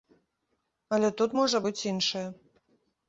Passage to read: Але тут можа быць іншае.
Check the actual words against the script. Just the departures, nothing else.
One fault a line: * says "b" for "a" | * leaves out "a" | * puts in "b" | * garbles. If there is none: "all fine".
all fine